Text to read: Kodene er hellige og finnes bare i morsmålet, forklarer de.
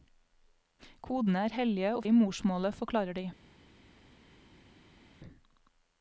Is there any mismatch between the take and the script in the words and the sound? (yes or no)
yes